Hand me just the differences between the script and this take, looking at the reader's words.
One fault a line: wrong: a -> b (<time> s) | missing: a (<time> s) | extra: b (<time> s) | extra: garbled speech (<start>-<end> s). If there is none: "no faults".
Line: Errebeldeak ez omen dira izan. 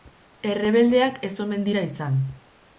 no faults